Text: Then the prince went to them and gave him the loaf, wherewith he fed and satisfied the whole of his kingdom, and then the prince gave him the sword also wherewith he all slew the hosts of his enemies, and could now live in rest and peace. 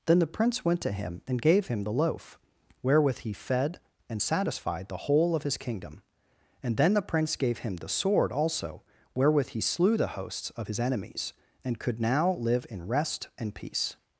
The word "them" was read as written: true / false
false